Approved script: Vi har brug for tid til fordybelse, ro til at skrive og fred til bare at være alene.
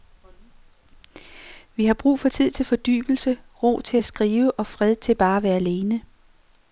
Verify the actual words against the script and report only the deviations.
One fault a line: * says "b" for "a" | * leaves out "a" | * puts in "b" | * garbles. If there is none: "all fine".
all fine